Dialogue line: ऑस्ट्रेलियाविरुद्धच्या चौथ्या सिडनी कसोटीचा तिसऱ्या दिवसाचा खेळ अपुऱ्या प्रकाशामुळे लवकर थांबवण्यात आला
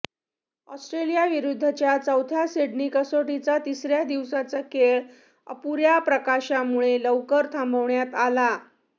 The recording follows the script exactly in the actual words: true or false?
true